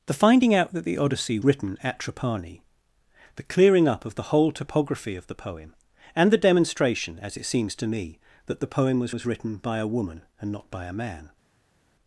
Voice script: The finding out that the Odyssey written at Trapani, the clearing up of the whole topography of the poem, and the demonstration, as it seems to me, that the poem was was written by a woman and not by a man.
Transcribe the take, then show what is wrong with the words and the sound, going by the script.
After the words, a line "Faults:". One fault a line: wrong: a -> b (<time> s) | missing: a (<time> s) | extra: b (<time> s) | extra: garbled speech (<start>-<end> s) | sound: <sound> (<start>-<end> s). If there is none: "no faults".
The finding out that the Odyssey written at Trapani, the clearing up of the whole topography of the poem, and the demonstration, as it seems to me, that the poem was was written by a woman and not by a man.
Faults:
no faults